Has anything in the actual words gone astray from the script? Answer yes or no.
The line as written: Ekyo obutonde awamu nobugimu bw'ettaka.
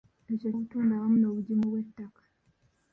no